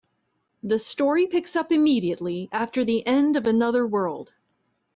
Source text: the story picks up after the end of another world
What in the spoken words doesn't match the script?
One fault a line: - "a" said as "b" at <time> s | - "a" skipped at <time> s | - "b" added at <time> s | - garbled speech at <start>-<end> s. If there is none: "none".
- "immediately" added at 1.7 s